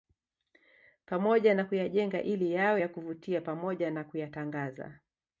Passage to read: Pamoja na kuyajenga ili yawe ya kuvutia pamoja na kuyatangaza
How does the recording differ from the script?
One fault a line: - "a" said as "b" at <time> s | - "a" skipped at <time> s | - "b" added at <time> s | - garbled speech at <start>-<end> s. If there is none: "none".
none